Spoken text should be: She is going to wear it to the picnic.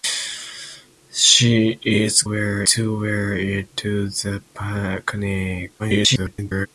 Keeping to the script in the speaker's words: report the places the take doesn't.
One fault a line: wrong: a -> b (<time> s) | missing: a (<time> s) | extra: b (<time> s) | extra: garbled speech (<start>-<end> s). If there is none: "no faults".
wrong: going -> wear (2.3 s)
extra: garbled speech (5.8-6.7 s)